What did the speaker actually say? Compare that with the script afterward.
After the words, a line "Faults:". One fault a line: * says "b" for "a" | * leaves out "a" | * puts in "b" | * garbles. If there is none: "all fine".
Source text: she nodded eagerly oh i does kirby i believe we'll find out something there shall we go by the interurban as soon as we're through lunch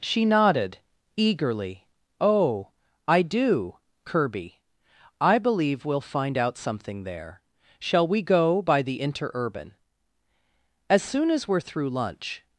she nodded eagerly oh i do kirby i believe we'll find out something there shall we go by the interurban as soon as we're through lunch
Faults:
* says "do" for "does"